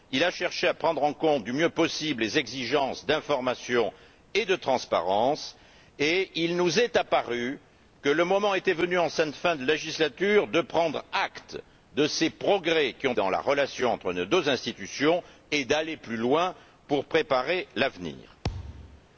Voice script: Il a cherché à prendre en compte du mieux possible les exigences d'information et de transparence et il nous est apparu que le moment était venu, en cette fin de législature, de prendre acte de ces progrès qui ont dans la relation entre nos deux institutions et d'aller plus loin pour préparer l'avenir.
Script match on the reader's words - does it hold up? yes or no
yes